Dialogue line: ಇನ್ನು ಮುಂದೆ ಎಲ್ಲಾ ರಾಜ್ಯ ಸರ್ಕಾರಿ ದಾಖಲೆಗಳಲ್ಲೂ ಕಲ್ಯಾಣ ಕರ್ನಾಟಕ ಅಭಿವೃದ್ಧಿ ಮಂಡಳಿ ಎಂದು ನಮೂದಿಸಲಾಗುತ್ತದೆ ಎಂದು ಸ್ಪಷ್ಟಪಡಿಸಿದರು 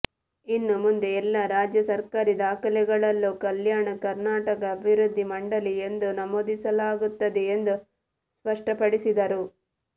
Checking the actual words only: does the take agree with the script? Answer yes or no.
yes